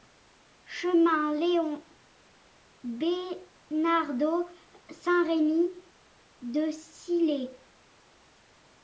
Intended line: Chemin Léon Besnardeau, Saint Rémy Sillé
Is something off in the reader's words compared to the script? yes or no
yes